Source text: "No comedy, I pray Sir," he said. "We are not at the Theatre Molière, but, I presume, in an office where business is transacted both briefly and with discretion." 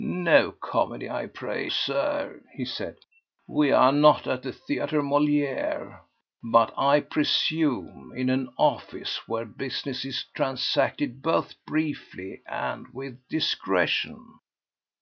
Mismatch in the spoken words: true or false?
false